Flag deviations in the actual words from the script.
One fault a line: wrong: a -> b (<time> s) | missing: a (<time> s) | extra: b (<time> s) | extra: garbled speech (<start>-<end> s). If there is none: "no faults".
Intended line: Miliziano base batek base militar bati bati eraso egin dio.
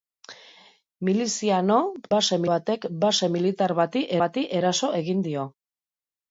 no faults